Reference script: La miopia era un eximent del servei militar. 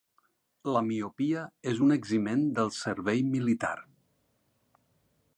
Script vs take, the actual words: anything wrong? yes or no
yes